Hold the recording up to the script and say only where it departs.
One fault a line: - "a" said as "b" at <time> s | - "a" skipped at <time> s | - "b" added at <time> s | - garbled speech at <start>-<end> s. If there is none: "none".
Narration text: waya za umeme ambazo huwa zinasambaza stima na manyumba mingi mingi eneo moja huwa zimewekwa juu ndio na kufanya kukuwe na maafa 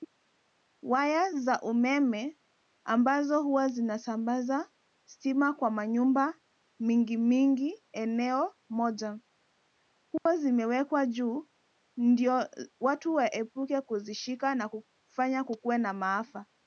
- "na" said as "kwa" at 5.5 s
- "watu waepuke kuzishika" added at 12.8 s